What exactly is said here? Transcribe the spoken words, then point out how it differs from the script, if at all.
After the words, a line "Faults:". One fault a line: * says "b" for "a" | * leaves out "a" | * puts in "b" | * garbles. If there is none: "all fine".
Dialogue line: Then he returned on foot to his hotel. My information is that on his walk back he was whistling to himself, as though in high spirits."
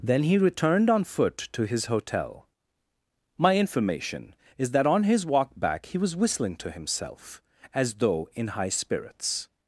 Then he returned on foot to his hotel. My information is that on his walk back he was whistling to himself, as though in high spirits."
Faults:
all fine